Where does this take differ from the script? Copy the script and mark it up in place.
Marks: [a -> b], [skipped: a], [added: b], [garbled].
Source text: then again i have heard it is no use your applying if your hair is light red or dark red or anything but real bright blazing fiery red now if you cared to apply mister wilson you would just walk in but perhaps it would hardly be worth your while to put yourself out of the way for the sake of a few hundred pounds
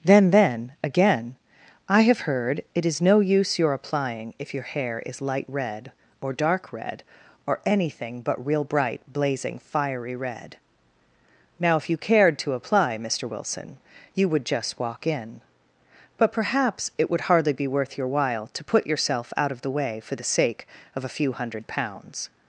then [added: then] again i have heard it is no use your applying if your hair is light red or dark red or anything but real bright blazing fiery red now if you cared to apply mister wilson you would just walk in but perhaps it would hardly be worth your while to put yourself out of the way for the sake of a few hundred pounds